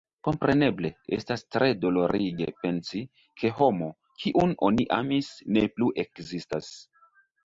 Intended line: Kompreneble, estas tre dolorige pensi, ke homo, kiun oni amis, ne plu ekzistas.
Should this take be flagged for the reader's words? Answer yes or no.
no